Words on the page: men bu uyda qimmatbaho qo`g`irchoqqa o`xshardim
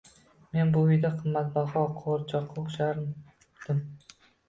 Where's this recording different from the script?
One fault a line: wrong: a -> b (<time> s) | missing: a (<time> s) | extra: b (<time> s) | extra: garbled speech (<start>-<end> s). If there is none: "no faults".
no faults